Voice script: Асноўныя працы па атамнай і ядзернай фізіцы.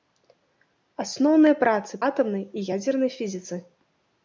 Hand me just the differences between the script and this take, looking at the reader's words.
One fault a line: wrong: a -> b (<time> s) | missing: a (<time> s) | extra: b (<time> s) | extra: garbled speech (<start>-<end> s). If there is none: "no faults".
missing: па (2.0 s)